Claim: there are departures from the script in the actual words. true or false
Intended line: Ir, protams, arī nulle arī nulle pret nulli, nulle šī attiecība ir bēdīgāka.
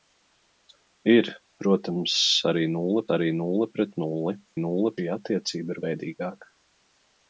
false